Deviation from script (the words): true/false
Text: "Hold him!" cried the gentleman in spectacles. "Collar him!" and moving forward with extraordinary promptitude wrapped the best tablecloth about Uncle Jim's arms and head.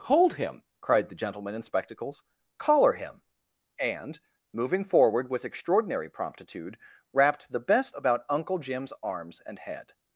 true